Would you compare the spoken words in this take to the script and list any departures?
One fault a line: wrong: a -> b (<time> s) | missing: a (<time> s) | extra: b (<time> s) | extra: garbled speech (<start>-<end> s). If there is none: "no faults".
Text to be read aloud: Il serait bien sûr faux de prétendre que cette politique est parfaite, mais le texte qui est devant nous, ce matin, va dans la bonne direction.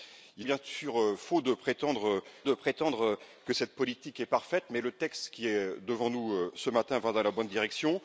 missing: serait (0.5 s)
extra: de prétendre (2.4 s)